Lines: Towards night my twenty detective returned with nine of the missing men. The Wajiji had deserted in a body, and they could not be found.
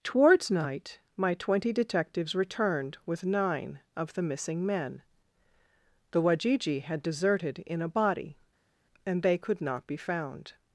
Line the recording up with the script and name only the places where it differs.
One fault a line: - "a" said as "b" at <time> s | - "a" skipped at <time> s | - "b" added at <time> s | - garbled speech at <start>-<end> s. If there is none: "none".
- "detective" said as "detectives" at 1.7 s